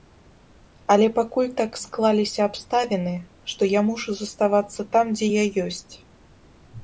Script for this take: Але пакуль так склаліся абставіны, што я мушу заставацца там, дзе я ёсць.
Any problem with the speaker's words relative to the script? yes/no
no